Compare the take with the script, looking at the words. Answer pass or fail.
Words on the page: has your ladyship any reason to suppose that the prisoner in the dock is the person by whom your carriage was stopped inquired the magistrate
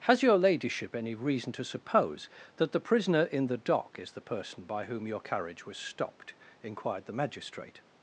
pass